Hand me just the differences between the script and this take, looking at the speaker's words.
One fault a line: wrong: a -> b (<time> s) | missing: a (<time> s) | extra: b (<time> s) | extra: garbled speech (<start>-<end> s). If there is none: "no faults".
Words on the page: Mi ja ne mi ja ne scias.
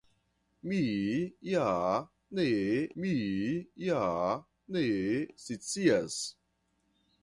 no faults